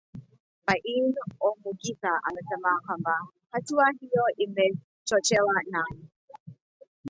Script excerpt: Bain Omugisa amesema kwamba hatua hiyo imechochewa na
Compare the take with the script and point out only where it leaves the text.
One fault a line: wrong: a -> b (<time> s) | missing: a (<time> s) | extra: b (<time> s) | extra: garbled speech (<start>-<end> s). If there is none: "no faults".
no faults